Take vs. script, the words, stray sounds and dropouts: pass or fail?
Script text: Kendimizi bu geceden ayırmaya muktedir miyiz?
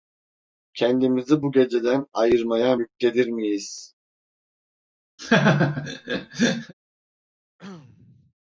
fail